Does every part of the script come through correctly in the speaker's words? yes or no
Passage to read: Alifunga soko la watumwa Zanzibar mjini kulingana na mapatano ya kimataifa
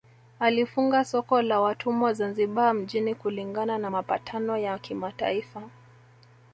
yes